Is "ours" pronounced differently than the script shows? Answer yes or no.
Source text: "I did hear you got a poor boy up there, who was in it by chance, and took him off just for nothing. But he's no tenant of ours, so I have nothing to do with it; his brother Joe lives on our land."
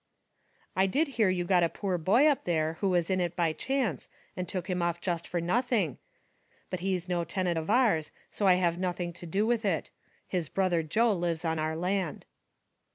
no